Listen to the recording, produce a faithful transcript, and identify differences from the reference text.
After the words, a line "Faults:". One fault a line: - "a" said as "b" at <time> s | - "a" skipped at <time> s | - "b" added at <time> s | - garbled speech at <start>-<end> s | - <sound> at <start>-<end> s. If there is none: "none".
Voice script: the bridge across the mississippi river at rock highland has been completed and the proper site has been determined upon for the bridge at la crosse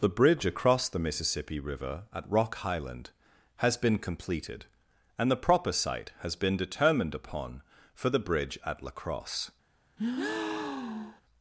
the bridge across the mississippi river at rock highland has been completed and the proper site has been determined upon for the bridge at la crosse
Faults:
- breath at 10.0-11.2 s